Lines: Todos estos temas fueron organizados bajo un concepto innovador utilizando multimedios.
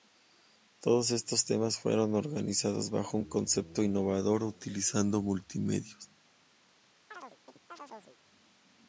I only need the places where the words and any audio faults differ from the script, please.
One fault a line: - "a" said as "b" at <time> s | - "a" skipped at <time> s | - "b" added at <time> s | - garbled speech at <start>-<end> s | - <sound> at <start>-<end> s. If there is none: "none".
- chirp at 7.1-8.2 s